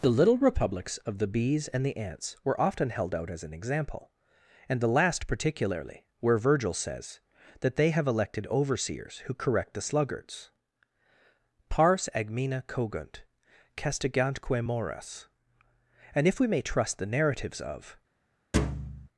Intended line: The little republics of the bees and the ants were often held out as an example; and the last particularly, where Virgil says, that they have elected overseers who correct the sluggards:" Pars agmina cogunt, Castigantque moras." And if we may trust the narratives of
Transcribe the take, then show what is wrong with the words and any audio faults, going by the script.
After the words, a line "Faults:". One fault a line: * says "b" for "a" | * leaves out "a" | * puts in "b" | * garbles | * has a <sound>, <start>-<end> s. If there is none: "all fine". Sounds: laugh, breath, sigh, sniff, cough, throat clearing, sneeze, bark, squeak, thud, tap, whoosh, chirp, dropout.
The little republics of the bees and the ants were often held out as an example; and the last particularly, where Virgil says, that they have elected overseers who correct the sluggards:" Pars agmina cogunt, Castigantque moras." And if we may trust the narratives of
Faults:
* has a thud, 18.5-19.1 s